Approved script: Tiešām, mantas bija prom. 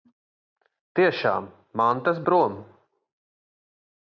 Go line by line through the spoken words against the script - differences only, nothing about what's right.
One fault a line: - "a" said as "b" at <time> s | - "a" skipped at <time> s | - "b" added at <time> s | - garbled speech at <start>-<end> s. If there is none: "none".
- "bija" skipped at 2.2 s